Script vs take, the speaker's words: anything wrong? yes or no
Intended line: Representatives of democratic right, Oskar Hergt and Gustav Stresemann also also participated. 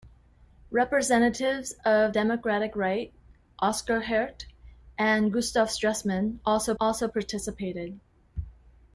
no